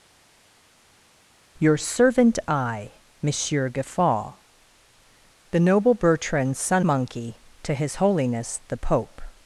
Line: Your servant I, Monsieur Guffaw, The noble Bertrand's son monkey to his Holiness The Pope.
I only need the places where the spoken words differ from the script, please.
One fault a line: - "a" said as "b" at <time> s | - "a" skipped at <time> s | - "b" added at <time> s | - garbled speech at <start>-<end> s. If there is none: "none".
none